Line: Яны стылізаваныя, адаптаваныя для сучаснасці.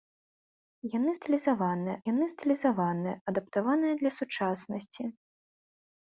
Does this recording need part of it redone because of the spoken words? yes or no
yes